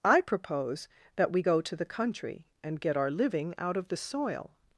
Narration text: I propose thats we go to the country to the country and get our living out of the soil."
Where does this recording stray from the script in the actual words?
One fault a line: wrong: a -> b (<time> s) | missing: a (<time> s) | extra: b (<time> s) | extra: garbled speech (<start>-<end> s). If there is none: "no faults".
wrong: thats -> that (1.1 s)
missing: to the country (2.5 s)